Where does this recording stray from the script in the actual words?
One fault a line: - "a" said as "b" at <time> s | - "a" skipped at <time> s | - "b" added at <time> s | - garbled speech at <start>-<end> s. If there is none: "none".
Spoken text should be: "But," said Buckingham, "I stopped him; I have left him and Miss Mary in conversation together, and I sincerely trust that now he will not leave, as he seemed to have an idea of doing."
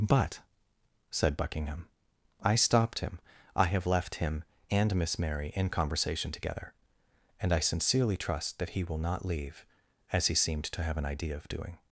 - "now" skipped at 8.7 s